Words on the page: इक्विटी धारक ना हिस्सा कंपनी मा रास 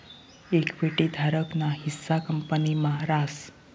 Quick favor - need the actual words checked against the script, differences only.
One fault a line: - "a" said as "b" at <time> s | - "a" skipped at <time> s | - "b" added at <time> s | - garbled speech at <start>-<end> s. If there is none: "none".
none